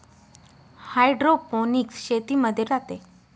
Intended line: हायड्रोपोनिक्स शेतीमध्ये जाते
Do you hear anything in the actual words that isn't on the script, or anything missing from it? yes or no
no